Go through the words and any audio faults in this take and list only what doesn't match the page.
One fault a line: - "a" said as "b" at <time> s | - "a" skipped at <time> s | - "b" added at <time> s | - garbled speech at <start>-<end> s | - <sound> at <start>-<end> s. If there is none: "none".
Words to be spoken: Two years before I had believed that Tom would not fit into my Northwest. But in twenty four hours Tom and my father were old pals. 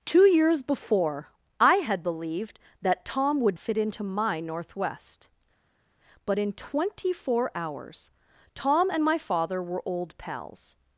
- "not" skipped at 3.6 s